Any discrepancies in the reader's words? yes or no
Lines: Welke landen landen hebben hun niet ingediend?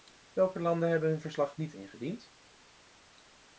yes